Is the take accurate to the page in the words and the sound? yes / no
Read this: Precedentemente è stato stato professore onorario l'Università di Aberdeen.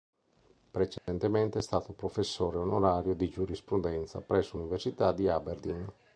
no